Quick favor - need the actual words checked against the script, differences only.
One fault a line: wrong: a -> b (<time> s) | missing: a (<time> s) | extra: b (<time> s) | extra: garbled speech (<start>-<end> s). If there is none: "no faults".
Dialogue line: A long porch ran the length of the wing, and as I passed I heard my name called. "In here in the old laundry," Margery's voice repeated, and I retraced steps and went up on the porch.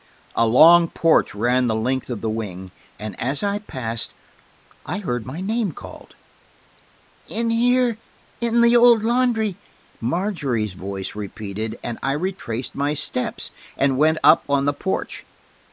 extra: my (12.7 s)